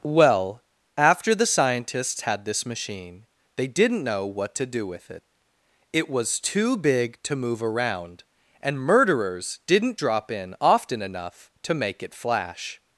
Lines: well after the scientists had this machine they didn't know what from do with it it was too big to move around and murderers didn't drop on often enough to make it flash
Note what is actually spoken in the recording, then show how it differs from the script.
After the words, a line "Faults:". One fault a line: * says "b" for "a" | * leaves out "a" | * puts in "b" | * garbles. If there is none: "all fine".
well after the scientists had this machine they didn't know what to do with it it was too big to move around and murderers didn't drop in often enough to make it flash
Faults:
* says "to" for "from"
* says "in" for "on"